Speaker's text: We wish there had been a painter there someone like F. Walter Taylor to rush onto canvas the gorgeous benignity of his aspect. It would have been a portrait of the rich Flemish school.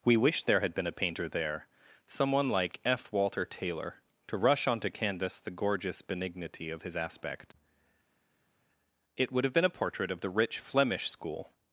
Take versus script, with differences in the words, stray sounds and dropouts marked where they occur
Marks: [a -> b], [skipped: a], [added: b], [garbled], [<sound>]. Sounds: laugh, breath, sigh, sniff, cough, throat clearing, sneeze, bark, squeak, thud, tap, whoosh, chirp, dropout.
We wish there had been a painter there someone like F. Walter Taylor to rush onto canvas the gorgeous benignity of his aspect. It would have been a portrait of the rich Flemish school.